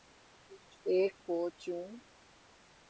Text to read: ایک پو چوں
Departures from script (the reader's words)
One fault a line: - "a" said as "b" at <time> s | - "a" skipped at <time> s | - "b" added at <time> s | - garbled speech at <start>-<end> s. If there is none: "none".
none